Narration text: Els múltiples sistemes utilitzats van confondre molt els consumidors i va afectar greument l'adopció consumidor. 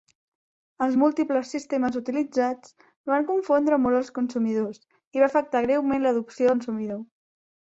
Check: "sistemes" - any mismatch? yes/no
no